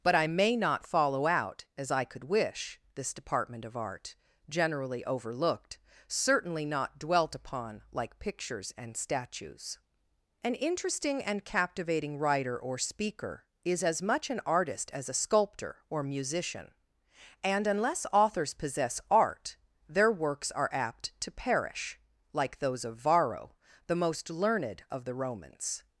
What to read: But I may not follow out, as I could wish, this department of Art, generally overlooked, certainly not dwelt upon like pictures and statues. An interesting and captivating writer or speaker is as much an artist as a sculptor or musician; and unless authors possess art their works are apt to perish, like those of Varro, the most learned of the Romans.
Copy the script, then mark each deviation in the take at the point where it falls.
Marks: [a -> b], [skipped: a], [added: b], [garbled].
But I may not follow out, as I could wish, this department of Art, generally overlooked, certainly not dwelt upon like pictures and statues. An interesting and captivating writer or speaker is as much an artist as a sculptor or musician; and unless authors possess art their works are apt to perish, like those of Varro, the most learned of the Romans.